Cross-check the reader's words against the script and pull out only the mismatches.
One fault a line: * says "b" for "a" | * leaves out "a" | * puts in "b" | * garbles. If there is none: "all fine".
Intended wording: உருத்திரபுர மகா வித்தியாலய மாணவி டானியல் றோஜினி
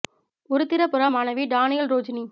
* leaves out "மகா வித்தியாலய"